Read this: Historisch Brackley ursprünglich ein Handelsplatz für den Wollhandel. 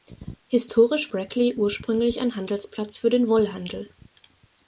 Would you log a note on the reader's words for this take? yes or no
no